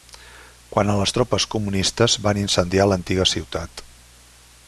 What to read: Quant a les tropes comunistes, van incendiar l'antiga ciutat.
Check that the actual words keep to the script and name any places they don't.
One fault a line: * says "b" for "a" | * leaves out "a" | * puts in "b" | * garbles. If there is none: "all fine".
all fine